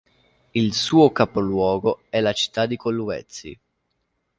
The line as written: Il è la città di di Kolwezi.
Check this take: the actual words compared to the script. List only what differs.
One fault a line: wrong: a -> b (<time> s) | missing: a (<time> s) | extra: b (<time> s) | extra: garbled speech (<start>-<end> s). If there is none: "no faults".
extra: suo capoluogo (0.7 s)
missing: di (2.8 s)